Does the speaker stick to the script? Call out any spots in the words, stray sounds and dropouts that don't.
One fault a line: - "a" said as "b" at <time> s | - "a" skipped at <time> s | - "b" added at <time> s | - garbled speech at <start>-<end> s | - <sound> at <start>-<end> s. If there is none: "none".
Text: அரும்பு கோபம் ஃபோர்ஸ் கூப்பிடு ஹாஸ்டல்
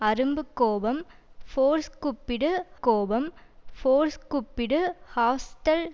- "கோபம் ஃபோர்ஸ் கூப்பிடு" added at 2.8 s